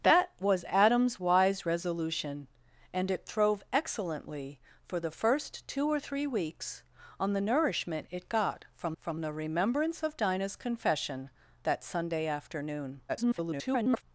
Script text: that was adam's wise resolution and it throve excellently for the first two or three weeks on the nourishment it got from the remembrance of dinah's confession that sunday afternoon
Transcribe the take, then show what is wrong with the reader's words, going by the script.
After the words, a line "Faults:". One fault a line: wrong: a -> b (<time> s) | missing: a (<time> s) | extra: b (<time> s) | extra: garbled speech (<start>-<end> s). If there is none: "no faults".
that was adam's wise resolution and it throve excellently for the first two or three weeks on the nourishment it got from from the remembrance of dinah's confession that sunday afternoon [garbled]
Faults:
extra: from (9.0 s)
extra: garbled speech (13.1-14.0 s)